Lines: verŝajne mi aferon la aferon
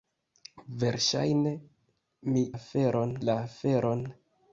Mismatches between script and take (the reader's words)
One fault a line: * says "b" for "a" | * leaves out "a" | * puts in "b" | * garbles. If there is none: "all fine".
all fine